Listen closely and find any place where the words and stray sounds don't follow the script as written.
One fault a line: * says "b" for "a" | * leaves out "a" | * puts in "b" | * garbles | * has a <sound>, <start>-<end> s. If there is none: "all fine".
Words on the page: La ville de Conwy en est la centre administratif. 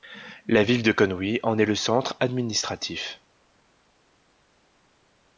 * says "le" for "la"